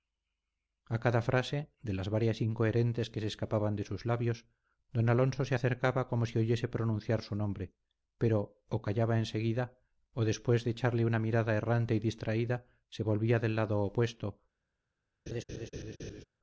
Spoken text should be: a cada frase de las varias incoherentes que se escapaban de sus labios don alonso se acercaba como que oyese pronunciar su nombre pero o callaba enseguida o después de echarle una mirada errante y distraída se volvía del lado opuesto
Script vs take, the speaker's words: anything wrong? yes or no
yes